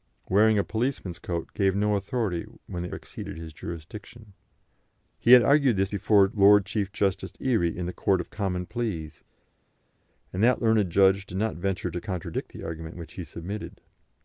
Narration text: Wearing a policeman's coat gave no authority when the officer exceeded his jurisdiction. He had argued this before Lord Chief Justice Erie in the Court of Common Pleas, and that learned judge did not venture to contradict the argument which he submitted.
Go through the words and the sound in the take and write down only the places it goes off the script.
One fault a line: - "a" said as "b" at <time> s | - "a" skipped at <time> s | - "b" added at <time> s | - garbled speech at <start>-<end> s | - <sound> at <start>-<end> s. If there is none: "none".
- "officer" skipped at 2.9 s